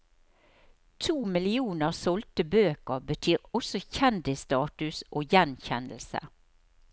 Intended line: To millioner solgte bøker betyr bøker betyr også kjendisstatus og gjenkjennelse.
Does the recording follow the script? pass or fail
fail